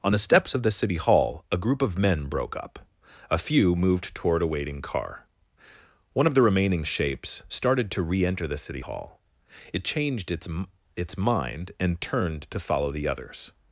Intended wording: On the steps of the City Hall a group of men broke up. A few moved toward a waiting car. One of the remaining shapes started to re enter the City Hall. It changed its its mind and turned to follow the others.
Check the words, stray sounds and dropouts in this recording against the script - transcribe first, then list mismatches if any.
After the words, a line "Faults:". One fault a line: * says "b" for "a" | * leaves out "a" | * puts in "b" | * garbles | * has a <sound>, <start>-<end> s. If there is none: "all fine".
On the steps of the City Hall a group of men broke up. A few moved toward a waiting car. One of the remaining shapes started to re enter the City Hall. It changed its its mind and turned to follow the others.
Faults:
all fine